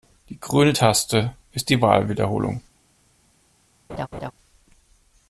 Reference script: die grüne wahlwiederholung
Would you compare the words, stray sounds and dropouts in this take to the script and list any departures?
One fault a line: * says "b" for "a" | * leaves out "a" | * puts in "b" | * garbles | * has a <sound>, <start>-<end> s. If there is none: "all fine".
* puts in "taste ist die"
* has a laugh, 3.9-4.3 s